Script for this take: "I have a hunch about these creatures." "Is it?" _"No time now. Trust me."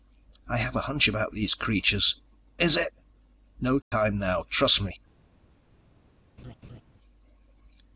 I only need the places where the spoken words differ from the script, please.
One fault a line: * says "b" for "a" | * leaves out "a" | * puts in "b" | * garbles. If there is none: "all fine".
all fine